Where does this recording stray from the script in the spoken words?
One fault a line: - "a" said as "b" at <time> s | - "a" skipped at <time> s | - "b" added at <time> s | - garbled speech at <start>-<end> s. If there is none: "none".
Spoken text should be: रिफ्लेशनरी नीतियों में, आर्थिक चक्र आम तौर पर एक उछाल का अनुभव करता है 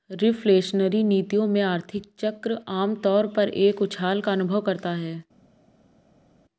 none